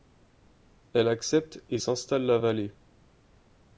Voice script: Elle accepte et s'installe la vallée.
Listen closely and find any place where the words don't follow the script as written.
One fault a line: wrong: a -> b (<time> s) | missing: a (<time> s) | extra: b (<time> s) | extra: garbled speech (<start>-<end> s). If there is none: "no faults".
no faults